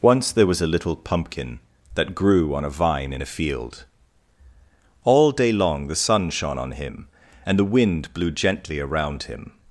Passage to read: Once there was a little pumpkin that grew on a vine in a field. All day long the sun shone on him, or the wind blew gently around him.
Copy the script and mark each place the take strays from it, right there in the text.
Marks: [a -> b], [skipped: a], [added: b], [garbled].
Once there was a little pumpkin that grew on a vine in a field. All day long the sun shone on him, [or -> and] the wind blew gently around him.